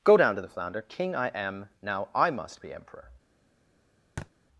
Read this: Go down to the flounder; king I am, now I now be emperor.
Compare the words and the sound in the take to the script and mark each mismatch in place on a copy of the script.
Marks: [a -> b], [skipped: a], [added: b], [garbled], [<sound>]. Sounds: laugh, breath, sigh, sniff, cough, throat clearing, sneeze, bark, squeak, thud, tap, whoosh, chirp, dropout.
Go down to the flounder; king I am, now I [now -> must] be emperor. [thud]